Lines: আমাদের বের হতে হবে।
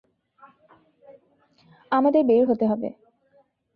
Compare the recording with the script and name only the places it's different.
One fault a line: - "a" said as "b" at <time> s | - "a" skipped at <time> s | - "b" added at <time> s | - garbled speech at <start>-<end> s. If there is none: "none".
none